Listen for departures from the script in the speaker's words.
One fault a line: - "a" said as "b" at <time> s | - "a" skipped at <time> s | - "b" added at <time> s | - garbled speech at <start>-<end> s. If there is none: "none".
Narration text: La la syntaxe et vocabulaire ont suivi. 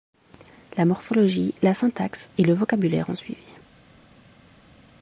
- "morphologie" added at 0.8 s
- "le" added at 2.4 s